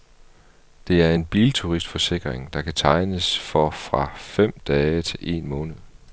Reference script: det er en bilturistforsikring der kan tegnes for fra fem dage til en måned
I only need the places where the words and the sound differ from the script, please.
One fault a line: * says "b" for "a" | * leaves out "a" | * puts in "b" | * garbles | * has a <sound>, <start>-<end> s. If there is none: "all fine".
all fine